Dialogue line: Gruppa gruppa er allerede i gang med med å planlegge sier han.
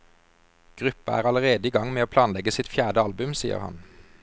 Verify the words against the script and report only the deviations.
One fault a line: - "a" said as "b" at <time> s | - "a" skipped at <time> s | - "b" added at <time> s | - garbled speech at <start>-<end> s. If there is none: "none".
- "gruppa" skipped at 1.2 s
- "med" skipped at 2.1 s
- "sitt fjerde album" added at 2.6 s